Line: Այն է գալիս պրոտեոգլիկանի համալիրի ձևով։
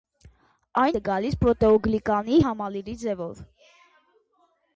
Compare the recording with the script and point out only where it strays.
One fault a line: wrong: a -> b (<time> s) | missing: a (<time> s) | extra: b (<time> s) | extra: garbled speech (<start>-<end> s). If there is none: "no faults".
no faults